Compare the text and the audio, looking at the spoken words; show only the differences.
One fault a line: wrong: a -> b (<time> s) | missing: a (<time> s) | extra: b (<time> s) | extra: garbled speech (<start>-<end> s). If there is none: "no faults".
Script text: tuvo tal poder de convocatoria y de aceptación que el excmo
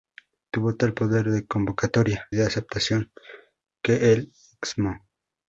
missing: y (2.3 s)